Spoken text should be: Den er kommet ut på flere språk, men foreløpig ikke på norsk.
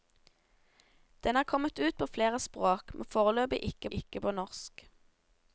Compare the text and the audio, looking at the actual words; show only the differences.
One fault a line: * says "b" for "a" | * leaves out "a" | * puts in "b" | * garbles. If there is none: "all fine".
* puts in "ikke"